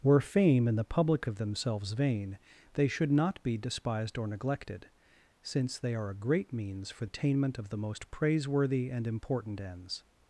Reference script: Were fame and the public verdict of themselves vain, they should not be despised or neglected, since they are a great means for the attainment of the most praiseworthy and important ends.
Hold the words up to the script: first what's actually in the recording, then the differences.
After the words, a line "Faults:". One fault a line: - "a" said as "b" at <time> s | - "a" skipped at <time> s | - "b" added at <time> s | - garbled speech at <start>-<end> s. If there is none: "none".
Were fame and the public of themselves vain, they should not be despised or neglected, since they are a great means for attainment of the most praiseworthy and important ends.
Faults:
- "verdict" skipped at 1.3 s
- "the" skipped at 7.1 s